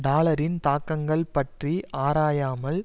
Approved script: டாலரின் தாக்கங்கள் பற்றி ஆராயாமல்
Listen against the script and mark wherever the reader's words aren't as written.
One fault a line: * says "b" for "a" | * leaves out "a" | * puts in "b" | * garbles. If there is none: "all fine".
all fine